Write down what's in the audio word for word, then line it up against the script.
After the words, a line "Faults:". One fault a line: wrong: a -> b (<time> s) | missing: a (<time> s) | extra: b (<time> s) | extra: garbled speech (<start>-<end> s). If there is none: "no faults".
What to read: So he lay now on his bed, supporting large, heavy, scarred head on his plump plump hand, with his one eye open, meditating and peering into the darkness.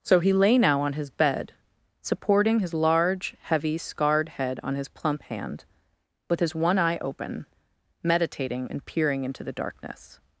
So he lay now on his bed, supporting his large, heavy, scarred head on his plump hand, with his one eye open, meditating and peering into the darkness.
Faults:
extra: his (2.6 s)
missing: plump (5.2 s)